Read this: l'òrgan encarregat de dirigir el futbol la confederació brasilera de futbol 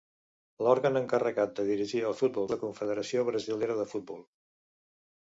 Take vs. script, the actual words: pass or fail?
pass